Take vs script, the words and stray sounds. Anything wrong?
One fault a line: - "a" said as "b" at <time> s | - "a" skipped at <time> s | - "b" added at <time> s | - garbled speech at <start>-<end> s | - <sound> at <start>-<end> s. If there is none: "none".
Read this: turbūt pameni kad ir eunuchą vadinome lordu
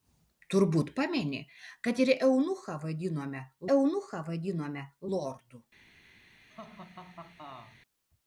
- "eunuchą vadinome" added at 3.8 s
- laugh at 6.5-7.8 s